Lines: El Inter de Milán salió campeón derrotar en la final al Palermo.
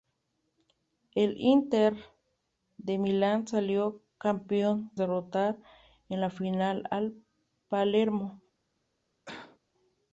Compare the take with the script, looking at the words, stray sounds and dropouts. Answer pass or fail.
fail